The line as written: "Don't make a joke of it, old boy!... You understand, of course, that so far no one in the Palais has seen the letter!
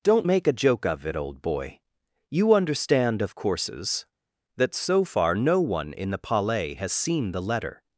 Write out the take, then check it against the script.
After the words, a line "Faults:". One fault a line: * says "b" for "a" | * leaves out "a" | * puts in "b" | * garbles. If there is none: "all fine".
"Don't make a joke of it, old boy!... You understand, of courses, that so far no one in the Palais has seen the letter!
Faults:
* says "courses" for "course"